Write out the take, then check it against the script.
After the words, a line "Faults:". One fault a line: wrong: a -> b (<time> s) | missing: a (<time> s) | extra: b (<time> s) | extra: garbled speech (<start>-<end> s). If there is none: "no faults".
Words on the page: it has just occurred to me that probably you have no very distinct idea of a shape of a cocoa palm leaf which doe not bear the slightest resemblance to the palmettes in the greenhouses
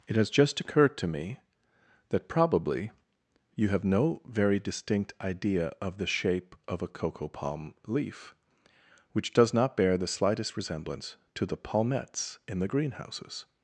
it has just occurred to me that probably you have no very distinct idea of the shape of a cocoa palm leaf which does not bear the slightest resemblance to the palmettes in the greenhouses
Faults:
wrong: a -> the (6.0 s)
wrong: doe -> does (9.3 s)